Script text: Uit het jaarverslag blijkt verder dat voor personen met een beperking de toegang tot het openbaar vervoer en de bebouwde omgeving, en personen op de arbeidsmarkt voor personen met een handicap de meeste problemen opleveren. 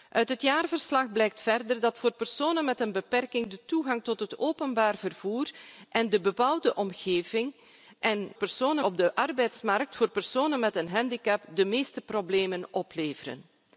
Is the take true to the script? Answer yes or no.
yes